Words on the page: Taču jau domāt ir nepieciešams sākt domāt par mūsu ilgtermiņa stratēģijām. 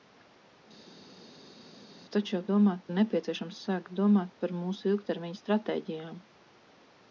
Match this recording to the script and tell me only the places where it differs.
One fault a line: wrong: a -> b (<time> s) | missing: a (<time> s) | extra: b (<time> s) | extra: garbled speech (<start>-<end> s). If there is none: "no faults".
no faults